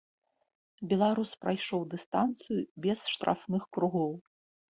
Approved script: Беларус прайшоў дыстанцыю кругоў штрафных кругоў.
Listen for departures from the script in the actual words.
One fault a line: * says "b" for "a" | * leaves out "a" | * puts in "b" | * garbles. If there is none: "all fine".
* says "без" for "кругоў"